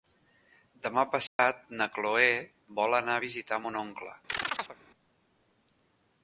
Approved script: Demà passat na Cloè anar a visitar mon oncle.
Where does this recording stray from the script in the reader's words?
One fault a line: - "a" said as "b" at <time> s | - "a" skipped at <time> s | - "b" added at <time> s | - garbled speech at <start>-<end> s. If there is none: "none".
- "vol" added at 2.8 s